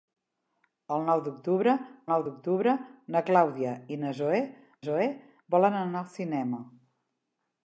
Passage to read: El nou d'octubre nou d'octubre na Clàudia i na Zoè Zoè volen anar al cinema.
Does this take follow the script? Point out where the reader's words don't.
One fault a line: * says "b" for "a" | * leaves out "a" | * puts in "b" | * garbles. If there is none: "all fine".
all fine